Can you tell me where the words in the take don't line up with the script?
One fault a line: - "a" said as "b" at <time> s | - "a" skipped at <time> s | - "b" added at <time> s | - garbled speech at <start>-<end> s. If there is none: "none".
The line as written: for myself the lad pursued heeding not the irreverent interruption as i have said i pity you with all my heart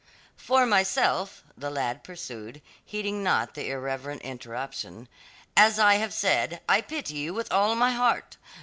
none